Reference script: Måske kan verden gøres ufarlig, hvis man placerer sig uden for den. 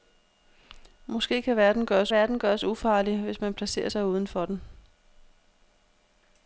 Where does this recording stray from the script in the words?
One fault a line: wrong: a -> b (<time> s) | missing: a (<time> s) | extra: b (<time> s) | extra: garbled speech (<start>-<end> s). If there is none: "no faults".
extra: verden gøres (2.1 s)